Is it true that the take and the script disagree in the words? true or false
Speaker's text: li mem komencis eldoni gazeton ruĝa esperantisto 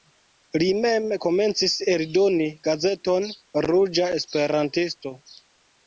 false